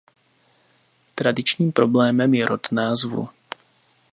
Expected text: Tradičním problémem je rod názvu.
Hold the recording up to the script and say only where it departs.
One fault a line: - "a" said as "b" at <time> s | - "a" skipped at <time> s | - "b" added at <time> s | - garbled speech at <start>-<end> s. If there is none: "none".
none